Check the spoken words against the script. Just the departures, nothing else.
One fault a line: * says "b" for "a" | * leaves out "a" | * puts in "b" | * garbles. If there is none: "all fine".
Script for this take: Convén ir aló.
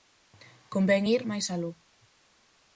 * puts in "máis"